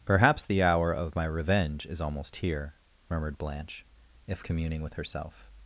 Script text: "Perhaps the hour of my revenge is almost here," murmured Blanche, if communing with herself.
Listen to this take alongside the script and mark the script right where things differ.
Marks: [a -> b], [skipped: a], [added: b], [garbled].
"Perhaps the hour of my revenge is almost here," murmured Blanche, if communing with herself.